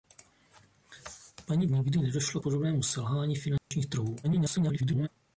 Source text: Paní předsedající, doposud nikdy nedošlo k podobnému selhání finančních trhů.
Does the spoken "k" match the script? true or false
false